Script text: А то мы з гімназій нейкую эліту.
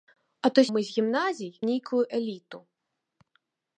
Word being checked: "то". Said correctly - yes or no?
yes